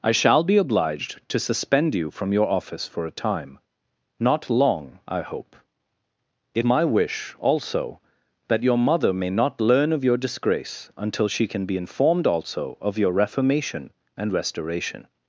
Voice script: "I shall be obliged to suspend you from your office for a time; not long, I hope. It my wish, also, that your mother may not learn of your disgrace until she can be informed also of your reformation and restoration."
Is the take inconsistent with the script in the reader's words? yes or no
no